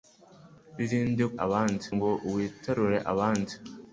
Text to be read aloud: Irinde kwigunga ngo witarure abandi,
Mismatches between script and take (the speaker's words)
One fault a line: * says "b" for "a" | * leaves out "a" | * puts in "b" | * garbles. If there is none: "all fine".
* says "abandi" for "kwigunga"